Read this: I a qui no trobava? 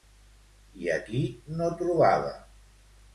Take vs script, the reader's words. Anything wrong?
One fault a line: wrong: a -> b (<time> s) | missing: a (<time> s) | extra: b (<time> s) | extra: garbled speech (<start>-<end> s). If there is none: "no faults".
no faults